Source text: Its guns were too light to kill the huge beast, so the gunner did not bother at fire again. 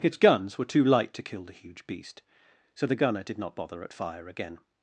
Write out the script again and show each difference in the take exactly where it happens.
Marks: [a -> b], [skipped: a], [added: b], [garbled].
Its guns were too light to kill the huge beast, so the gunner did not bother at fire again.